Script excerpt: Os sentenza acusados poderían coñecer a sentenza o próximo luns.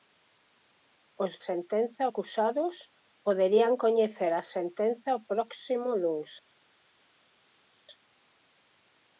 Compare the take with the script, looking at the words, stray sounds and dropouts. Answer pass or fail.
pass